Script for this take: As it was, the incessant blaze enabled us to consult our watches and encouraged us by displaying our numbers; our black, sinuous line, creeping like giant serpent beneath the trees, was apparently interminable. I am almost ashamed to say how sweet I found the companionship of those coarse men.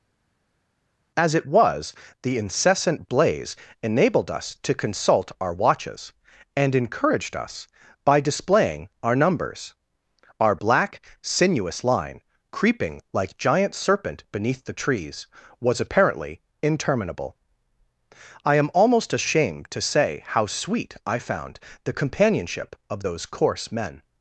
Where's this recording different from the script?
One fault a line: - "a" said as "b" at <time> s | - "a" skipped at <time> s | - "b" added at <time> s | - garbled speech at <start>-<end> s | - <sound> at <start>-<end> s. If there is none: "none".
none